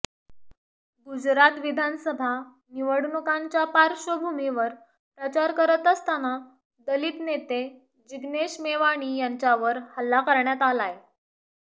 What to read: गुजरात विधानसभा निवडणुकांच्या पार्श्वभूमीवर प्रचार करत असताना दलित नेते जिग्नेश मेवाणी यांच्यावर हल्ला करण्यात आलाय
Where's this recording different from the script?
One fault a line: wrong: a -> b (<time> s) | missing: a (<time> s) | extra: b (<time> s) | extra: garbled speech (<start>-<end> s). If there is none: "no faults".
no faults